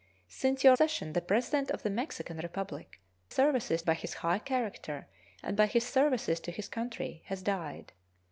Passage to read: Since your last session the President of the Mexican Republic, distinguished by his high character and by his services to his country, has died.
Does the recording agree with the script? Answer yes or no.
no